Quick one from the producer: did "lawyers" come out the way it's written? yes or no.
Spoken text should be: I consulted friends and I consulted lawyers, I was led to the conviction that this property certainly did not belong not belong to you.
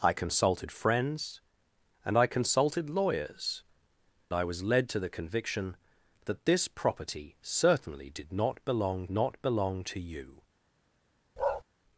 yes